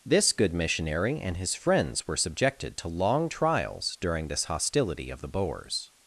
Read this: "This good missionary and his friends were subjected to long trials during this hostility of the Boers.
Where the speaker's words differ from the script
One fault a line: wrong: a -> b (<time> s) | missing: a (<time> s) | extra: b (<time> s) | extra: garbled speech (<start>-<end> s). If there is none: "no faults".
no faults